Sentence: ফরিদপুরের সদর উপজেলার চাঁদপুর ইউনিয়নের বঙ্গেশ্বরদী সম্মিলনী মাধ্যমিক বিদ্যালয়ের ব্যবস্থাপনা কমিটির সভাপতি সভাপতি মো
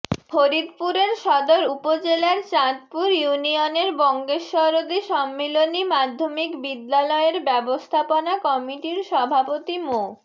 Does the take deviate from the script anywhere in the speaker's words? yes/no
yes